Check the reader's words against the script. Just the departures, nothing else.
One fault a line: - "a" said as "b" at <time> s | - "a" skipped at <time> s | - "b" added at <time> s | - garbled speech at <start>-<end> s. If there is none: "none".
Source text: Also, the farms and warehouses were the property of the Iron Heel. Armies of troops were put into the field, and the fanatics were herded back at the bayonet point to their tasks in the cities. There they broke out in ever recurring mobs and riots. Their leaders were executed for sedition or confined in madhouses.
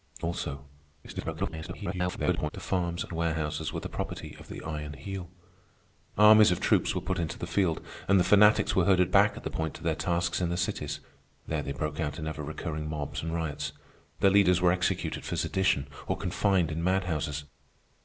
- garbled speech at 1.0-2.5 s
- "bayonet" skipped at 9.5 s